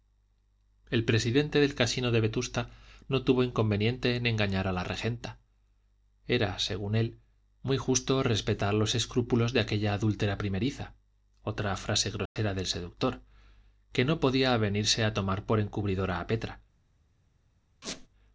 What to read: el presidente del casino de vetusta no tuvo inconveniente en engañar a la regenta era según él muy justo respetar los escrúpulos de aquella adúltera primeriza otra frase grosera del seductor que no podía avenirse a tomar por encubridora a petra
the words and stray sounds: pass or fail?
fail